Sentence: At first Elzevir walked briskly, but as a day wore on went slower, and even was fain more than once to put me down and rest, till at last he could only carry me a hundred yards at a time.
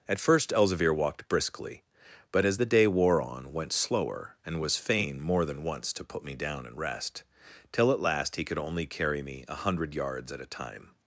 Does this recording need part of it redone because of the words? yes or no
yes